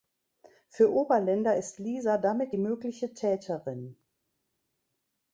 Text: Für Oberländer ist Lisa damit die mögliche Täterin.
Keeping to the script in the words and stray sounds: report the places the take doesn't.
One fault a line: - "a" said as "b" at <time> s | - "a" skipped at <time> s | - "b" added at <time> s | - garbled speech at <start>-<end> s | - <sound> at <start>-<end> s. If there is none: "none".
none